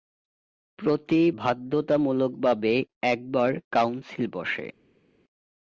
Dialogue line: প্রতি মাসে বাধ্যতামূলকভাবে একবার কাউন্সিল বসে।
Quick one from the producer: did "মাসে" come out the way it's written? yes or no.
no